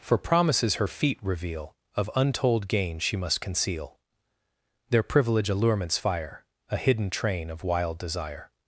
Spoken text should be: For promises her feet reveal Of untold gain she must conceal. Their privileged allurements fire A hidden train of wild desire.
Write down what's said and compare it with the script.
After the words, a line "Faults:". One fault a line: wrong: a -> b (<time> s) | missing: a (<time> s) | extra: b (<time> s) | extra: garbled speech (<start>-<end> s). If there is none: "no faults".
For promises her feet reveal Of untold gain she must conceal. Their privilege allurements fire A hidden train of wild desire.
Faults:
wrong: privileged -> privilege (5.0 s)